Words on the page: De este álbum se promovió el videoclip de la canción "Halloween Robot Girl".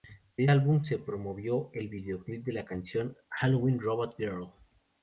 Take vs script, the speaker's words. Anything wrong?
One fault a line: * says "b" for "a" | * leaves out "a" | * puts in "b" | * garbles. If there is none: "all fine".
* leaves out "este"